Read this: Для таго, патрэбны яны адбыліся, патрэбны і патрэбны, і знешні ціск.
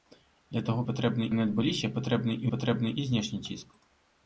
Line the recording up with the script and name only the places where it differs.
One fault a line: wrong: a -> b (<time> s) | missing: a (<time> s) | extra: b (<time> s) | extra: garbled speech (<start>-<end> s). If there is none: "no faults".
no faults